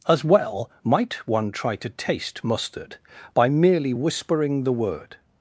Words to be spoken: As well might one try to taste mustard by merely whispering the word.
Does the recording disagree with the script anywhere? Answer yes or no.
no